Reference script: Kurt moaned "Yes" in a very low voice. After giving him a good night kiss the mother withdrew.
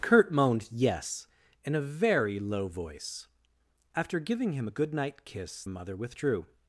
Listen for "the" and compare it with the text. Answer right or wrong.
wrong